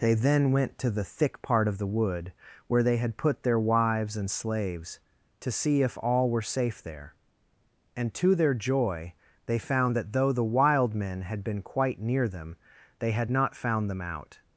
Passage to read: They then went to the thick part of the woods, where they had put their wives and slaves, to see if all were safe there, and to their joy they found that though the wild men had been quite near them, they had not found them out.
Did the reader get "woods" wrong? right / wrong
wrong